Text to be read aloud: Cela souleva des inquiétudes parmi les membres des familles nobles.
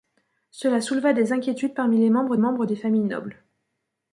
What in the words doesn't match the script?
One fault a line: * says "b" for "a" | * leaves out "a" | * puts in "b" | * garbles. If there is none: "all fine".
* puts in "membres"